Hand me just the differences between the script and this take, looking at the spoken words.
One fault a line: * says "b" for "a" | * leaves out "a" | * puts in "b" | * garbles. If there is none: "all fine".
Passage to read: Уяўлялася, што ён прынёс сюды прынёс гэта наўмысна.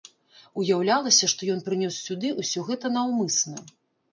* says "ўсё" for "прынёс"